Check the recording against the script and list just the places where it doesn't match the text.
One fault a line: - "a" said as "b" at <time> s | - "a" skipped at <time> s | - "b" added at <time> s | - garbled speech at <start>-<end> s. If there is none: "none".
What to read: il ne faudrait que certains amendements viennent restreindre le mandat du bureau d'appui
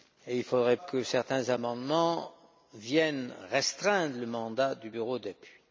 none